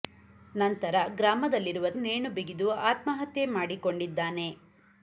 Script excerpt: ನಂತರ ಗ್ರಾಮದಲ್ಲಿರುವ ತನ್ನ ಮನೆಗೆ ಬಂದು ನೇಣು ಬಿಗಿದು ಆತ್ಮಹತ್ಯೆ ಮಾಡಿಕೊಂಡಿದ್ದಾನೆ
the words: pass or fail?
fail